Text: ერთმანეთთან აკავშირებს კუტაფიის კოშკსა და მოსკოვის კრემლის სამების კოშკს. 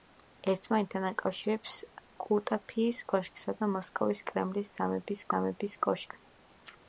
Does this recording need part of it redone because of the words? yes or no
yes